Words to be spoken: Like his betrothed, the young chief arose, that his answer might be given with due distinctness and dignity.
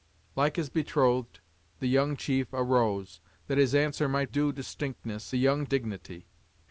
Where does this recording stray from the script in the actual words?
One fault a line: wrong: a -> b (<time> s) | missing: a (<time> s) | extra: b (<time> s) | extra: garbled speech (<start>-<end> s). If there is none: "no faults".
missing: be given with (4.3 s)
wrong: and -> young (5.3 s)